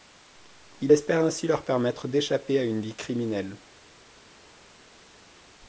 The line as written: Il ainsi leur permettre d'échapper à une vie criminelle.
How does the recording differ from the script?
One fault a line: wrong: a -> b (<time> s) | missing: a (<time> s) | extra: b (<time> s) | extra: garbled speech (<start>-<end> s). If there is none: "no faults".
extra: espère (0.9 s)